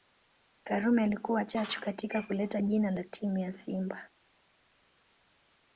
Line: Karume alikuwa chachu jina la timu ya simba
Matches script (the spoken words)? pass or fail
fail